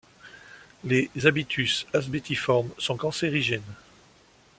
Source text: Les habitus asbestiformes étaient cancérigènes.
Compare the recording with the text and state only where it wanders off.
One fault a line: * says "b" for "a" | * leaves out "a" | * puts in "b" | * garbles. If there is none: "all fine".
* says "sont" for "étaient"